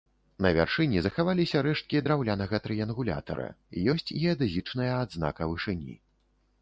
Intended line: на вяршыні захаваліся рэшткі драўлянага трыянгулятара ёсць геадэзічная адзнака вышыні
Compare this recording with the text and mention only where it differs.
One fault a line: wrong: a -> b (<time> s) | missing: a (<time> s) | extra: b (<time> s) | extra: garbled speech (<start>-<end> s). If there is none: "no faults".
no faults